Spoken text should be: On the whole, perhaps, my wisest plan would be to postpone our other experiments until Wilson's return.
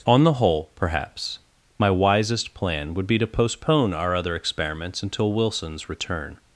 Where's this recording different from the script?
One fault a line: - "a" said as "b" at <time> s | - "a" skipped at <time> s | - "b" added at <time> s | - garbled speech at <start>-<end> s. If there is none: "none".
none